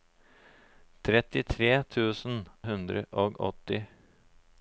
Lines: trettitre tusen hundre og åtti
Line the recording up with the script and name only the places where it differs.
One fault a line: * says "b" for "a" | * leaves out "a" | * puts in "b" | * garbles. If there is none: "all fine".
all fine